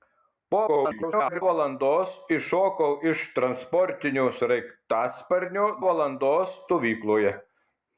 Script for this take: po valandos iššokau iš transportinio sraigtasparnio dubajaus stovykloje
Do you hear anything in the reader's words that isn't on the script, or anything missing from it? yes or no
yes